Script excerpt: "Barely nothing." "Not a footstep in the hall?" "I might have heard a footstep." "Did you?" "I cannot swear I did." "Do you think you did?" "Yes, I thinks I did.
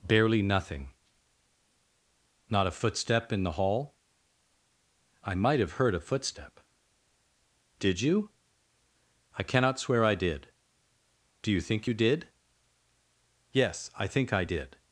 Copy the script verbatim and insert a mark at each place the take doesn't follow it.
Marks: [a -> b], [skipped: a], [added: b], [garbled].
"Barely nothing." "Not a footstep in the hall?" "I might have heard a footstep." "Did you?" "I cannot swear I did." "Do you think you did?" "Yes, I [thinks -> think] I did.